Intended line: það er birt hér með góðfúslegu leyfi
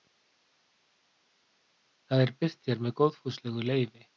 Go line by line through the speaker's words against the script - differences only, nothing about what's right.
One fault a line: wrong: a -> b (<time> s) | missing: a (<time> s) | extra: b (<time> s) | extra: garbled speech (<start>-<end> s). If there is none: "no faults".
no faults